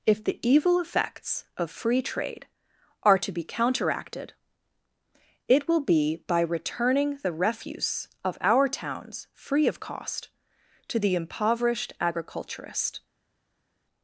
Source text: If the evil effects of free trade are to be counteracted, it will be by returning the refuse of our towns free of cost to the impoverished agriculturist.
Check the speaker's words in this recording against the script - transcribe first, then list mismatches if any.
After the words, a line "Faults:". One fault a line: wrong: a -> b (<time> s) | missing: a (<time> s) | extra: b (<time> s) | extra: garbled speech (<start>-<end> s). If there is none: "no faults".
If the evil effects of free trade are to be counteracted, it will be by returning the refuse of our towns free of cost to the impoverished agriculturist.
Faults:
no faults